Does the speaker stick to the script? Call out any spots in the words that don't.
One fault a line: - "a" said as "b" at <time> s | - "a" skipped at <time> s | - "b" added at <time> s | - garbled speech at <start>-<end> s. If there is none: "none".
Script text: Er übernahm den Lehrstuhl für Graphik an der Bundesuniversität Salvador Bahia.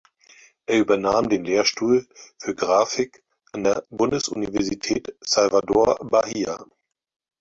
none